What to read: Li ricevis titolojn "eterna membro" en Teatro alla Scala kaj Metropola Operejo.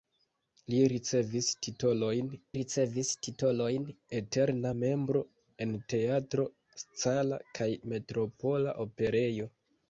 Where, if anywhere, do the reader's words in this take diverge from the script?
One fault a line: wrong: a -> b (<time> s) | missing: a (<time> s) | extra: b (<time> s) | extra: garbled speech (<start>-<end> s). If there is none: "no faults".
extra: ricevis titolojn (2.6 s)
missing: alla (6.4 s)